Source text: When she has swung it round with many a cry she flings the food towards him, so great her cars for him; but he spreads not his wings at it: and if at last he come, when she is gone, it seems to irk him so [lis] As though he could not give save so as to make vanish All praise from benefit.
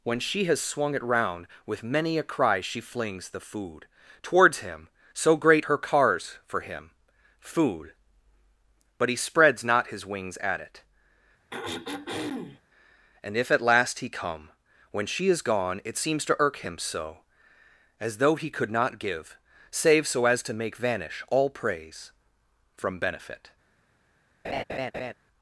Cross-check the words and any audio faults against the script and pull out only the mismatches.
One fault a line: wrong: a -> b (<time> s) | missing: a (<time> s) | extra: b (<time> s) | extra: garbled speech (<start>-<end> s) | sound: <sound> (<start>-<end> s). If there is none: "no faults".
extra: food (7.4 s)
sound: throat clearing (11.5-12.6 s)
missing: lis (17.2 s)
sound: laugh (24.4-25.1 s)